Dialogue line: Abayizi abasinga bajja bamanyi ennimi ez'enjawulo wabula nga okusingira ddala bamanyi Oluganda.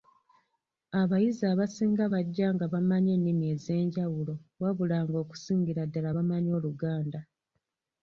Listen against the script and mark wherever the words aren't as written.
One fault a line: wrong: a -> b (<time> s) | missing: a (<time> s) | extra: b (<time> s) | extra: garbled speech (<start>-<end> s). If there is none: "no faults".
extra: nga (2.5 s)